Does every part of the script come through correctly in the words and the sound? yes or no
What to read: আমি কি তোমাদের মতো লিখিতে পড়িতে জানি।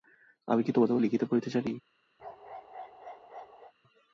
no